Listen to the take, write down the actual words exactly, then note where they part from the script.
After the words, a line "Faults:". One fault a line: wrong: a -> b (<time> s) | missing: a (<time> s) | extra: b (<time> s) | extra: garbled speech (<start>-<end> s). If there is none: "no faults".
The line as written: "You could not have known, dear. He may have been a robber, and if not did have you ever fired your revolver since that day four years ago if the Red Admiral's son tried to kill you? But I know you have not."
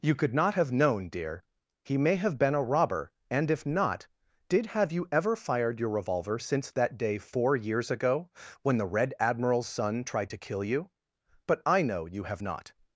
"You could not have known, dear. He may have been a robber, and if not did have you ever fired your revolver since that day four years ago when the Red Admiral's son tried to kill you? But I know you have not."
Faults:
wrong: if -> when (8.6 s)